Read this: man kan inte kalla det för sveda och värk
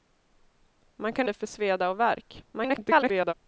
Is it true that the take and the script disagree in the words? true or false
true